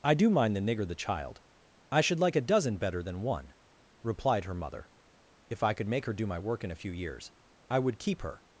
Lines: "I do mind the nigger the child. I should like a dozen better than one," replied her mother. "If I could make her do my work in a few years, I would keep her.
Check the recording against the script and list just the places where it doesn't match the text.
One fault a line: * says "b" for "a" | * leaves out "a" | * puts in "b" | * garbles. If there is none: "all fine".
all fine